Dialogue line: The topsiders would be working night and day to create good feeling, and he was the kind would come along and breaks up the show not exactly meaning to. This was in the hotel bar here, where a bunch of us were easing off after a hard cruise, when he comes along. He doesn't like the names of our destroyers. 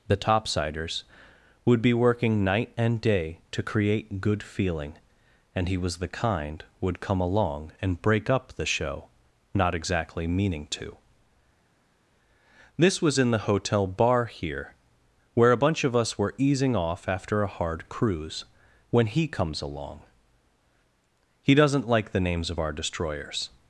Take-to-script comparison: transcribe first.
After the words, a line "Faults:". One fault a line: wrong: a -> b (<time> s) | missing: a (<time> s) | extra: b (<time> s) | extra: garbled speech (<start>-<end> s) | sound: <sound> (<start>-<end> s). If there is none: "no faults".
The topsiders would be working night and day to create good feeling, and he was the kind would come along and break up the show not exactly meaning to. This was in the hotel bar here, where a bunch of us were easing off after a hard cruise, when he comes along. He doesn't like the names of our destroyers.
Faults:
wrong: breaks -> break (8.0 s)